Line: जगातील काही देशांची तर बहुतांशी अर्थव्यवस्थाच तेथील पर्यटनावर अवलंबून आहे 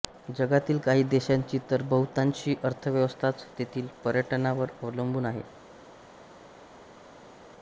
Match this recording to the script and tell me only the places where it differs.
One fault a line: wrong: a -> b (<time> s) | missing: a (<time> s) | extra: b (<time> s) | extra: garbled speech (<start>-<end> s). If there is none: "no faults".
no faults